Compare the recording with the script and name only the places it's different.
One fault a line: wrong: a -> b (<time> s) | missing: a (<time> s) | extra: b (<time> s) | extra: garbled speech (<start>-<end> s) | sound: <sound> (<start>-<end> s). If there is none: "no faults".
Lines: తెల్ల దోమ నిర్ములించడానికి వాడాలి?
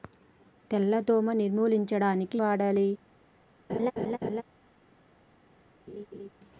sound: laugh (3.7-4.4 s)
sound: laugh (5.9-6.3 s)